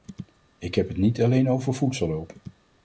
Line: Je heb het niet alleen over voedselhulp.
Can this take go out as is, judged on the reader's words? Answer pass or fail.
fail